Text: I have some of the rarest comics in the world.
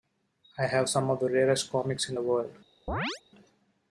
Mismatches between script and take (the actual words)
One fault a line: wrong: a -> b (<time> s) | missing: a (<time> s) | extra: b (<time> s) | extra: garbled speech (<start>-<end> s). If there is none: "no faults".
no faults